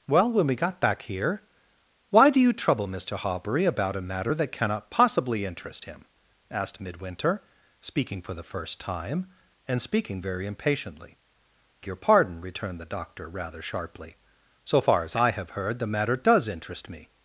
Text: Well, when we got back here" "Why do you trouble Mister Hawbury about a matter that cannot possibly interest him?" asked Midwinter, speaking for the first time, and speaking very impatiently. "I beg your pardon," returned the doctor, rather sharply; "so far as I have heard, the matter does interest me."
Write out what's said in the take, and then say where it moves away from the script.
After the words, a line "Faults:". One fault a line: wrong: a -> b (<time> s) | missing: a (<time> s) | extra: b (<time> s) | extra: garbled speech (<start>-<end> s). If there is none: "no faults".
Well, when we got back here" "Why do you trouble Mister Hawbury about a matter that cannot possibly interest him?" asked Midwinter, speaking for the first time, and speaking very impatiently. "your pardon," returned the doctor, rather sharply; "so far as I have heard, the matter does interest me."
Faults:
missing: I beg (11.2 s)